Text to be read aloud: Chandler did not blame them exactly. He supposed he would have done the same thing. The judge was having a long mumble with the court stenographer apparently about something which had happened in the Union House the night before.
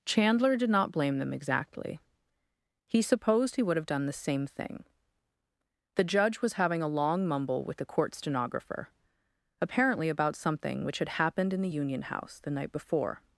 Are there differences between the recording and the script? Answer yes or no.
no